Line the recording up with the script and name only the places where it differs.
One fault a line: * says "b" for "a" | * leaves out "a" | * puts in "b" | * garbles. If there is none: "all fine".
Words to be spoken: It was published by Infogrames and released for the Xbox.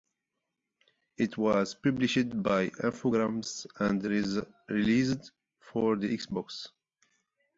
all fine